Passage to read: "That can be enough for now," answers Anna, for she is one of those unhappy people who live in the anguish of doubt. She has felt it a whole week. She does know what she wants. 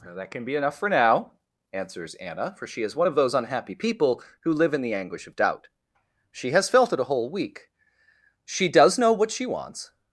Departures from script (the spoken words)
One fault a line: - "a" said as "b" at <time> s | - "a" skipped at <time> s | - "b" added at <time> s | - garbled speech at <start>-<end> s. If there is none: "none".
none